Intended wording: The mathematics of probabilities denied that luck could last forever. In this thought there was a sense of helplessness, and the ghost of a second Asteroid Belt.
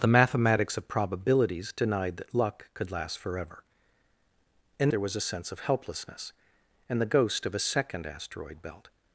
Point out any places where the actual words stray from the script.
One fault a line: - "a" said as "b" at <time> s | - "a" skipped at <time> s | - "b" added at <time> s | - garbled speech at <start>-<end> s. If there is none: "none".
- "this thought" skipped at 4.9 s